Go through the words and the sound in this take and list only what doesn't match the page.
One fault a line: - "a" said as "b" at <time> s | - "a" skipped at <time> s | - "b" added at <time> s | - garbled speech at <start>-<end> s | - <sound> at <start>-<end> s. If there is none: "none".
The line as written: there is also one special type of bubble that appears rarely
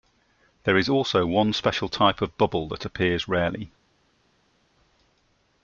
none